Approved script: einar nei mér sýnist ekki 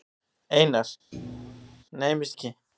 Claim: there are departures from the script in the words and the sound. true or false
true